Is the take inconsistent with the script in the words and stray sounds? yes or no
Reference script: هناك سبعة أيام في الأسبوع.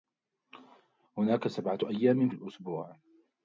no